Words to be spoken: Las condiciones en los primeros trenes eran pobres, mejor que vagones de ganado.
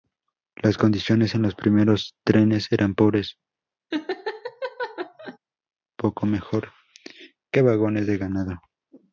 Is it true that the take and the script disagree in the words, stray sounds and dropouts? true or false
true